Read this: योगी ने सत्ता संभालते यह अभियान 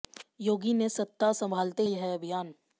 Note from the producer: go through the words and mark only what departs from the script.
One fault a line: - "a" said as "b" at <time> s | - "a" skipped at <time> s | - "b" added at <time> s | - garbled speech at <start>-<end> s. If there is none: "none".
none